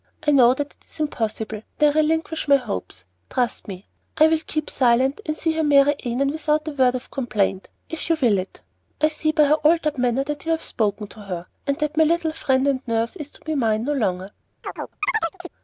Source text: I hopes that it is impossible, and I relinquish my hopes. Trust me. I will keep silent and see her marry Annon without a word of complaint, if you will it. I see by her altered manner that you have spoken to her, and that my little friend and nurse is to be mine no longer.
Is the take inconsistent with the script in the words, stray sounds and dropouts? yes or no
yes